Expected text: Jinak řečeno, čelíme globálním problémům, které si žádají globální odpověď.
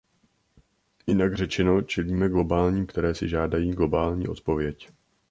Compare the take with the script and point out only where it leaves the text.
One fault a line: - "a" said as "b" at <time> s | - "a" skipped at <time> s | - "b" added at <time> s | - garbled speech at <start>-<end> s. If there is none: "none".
- "problémům" skipped at 2.9 s